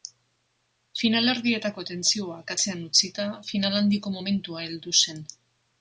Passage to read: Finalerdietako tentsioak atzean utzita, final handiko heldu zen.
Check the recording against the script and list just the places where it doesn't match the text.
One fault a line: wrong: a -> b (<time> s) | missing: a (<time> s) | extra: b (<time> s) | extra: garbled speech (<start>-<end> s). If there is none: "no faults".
extra: momentua (4.2 s)